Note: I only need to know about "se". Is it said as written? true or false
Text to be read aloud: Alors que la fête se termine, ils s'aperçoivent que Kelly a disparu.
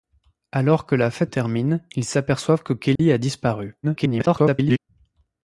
false